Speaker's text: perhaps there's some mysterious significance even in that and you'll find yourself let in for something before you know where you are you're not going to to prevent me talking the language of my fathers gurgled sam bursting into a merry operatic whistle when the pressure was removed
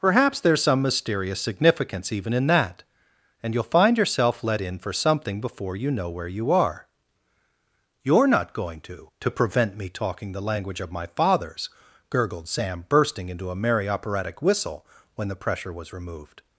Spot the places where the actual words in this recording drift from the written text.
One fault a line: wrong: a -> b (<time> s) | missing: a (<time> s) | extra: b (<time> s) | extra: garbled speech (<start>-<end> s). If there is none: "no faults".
no faults